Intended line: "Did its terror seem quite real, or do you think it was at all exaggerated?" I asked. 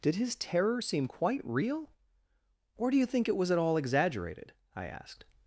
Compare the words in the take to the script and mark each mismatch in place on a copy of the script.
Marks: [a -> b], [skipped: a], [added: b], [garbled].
"Did [its -> his] terror seem quite real, or do you think it was at all exaggerated?" I asked.